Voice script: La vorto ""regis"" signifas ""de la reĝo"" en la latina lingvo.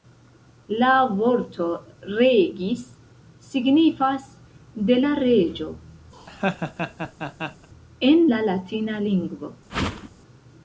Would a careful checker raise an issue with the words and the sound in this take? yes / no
yes